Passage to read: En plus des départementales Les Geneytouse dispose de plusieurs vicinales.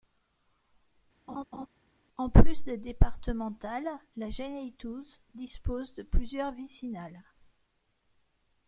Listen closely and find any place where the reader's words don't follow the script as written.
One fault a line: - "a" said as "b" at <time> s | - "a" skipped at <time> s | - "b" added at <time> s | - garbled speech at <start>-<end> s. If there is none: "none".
- "Les" said as "La" at 4.2 s